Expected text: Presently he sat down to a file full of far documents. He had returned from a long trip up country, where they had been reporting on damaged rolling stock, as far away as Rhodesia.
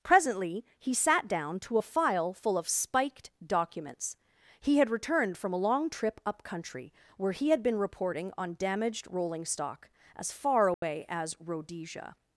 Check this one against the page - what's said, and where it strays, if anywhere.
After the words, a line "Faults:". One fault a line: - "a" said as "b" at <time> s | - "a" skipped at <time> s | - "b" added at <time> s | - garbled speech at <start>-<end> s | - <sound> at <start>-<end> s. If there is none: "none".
Presently he sat down to a file full of spiked documents. He had returned from a long trip up country, where he had been reporting on damaged rolling stock, as far away as Rhodesia.
Faults:
- "far" said as "spiked" at 2.7 s
- "they" said as "he" at 7.3 s
- dropout at 10.7-10.8 s